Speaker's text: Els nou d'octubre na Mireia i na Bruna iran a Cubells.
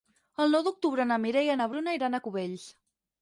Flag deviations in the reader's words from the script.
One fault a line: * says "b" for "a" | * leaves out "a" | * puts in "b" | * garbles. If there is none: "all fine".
* says "El" for "Els"